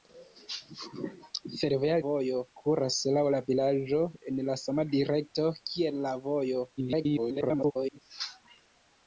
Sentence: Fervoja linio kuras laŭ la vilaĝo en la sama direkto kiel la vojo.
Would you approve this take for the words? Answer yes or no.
no